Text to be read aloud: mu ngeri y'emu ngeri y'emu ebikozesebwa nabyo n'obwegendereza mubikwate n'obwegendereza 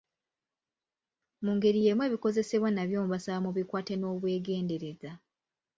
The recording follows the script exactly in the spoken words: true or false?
false